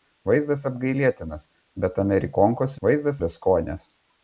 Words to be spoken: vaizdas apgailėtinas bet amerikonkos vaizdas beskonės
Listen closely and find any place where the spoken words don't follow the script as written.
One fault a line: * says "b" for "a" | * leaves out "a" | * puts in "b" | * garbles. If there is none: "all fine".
all fine